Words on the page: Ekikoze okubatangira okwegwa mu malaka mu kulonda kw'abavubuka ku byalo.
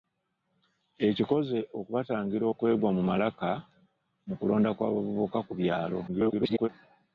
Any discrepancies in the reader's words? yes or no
yes